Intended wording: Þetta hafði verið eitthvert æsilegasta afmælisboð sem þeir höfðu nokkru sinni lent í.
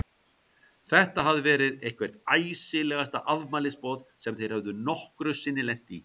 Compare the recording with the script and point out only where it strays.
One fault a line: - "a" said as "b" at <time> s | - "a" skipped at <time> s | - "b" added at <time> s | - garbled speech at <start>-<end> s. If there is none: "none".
none